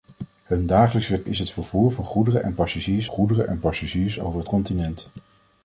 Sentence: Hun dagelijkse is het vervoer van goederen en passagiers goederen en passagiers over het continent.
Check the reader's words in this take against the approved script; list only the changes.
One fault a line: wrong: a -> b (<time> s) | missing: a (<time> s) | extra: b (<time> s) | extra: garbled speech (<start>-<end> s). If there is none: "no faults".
no faults